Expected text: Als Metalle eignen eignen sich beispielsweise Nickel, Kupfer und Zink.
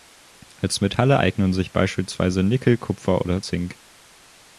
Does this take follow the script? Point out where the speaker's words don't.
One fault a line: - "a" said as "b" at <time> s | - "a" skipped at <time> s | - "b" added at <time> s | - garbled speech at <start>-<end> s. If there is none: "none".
- "eignen" skipped at 1.5 s
- "und" said as "oder" at 3.2 s